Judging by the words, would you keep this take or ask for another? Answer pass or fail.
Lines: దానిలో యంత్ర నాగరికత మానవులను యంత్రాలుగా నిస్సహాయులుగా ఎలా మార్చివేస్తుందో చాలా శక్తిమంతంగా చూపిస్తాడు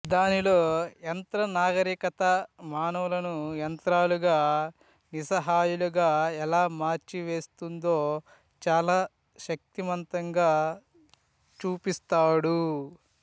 pass